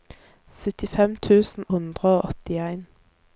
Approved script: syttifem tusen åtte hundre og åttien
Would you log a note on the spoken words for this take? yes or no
yes